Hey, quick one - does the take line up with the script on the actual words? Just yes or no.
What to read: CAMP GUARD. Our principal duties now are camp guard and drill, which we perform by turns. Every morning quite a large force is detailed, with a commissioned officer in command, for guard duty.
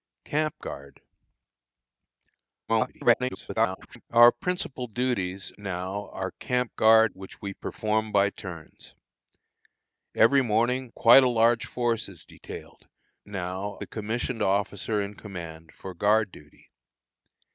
no